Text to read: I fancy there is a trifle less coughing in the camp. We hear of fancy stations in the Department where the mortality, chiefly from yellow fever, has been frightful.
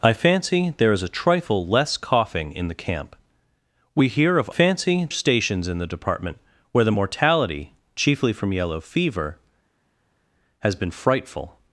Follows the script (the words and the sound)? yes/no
yes